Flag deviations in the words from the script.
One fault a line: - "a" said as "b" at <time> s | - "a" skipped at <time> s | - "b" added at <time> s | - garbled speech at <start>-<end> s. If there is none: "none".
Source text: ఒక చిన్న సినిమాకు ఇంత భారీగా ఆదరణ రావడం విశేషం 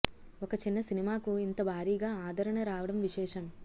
none